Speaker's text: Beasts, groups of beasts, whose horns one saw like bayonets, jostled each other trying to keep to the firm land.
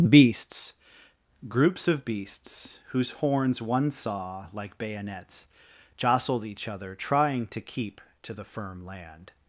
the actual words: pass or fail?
pass